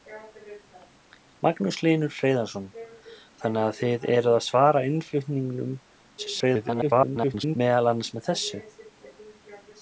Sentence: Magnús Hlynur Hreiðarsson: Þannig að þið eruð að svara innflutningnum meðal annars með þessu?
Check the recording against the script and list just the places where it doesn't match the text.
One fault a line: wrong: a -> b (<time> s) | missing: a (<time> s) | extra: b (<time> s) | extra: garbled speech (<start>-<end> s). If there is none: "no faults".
extra: garbled speech (6.2-7.6 s)